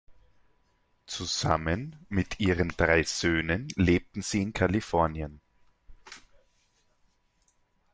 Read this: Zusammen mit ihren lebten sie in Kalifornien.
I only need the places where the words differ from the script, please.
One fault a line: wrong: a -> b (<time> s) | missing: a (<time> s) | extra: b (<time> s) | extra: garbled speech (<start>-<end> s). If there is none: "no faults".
extra: drei Söhnen (2.7 s)